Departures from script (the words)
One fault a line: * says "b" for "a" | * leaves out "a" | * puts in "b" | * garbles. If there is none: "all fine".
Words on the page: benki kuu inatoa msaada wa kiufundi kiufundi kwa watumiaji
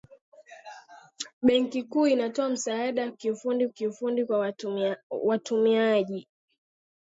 all fine